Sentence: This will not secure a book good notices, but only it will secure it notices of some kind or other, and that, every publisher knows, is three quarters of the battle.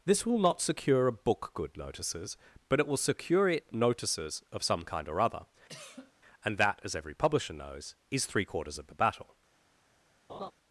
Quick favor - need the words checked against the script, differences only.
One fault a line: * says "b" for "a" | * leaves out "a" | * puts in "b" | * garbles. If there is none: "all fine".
* leaves out "only"
* puts in "as"